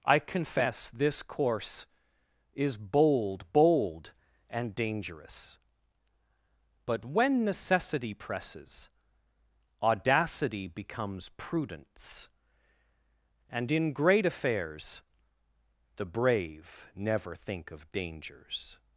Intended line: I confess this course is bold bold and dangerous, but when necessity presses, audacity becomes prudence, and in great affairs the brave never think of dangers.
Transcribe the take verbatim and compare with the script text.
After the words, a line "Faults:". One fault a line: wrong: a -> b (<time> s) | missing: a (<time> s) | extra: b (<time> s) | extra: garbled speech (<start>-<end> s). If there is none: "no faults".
I confess this course is bold bold and dangerous, but when necessity presses, audacity becomes prudence, and in great affairs the brave never think of dangers.
Faults:
no faults